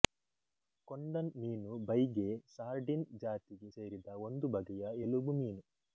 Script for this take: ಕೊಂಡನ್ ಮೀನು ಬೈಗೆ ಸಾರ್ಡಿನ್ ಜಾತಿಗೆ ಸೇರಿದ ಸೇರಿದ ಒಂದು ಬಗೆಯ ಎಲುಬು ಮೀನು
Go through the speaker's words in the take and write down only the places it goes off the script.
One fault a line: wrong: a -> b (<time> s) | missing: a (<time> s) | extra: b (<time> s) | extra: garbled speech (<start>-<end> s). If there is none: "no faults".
missing: ಸೇರಿದ (4.1 s)